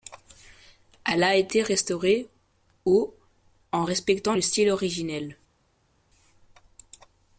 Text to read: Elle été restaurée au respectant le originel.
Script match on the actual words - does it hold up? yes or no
no